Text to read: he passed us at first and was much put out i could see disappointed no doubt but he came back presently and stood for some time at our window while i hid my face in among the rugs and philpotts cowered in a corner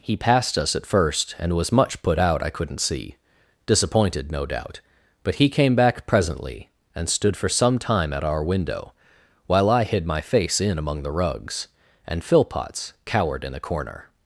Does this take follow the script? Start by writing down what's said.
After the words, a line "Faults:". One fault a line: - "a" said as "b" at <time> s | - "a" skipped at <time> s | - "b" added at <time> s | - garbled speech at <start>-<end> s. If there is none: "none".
he passed us at first and was much put out i couldn't see disappointed no doubt but he came back presently and stood for some time at our window while i hid my face in among the rugs and philpotts cowered in a corner
Faults:
- "could" said as "couldn't" at 2.5 s